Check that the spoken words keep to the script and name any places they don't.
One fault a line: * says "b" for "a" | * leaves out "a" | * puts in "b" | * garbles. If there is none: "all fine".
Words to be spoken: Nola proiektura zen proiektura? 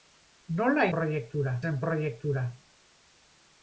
all fine